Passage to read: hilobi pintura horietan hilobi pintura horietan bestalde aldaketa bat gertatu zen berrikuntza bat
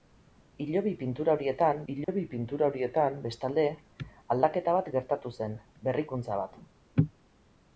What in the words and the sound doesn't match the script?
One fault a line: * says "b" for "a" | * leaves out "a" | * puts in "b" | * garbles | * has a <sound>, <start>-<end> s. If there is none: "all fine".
* has a dropout, 2.0-2.1 s